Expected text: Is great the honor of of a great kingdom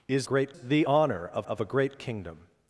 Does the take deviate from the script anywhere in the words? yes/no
no